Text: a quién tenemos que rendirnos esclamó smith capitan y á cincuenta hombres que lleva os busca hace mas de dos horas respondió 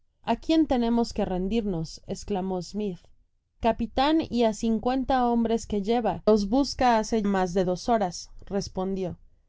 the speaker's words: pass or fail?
pass